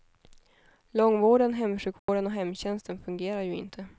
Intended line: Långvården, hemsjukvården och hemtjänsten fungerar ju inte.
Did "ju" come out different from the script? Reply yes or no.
no